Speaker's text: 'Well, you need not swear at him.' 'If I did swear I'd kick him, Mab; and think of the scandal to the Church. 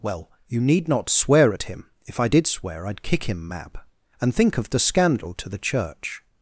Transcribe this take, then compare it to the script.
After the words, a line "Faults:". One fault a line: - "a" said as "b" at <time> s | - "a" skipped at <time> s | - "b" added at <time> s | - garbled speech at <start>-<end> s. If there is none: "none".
'Well, you need not swear at him.' 'If I did swear I'd kick him, Mab; and think of the scandal to the Church.
Faults:
none